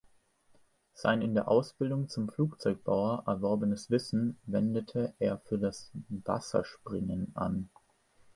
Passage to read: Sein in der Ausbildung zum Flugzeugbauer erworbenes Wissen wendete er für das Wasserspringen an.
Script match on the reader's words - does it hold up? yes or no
yes